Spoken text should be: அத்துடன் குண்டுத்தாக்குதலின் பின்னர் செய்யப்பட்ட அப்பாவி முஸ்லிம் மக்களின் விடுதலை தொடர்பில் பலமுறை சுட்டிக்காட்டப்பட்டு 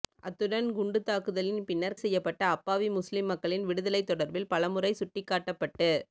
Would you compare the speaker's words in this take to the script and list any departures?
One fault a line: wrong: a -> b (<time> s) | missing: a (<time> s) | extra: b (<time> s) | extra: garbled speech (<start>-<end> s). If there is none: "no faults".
no faults